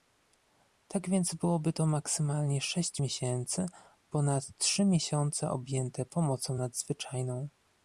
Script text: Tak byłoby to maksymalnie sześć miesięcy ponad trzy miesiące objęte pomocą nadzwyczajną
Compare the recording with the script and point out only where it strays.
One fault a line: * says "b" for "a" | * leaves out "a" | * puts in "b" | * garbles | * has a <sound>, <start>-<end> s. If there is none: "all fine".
* puts in "więc"